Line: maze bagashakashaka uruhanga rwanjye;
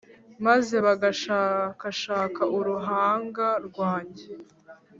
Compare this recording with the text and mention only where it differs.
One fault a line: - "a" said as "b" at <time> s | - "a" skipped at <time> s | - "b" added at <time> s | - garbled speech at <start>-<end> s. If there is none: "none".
none